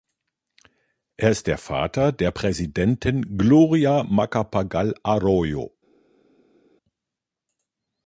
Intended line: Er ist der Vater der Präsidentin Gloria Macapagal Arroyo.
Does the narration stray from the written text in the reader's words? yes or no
no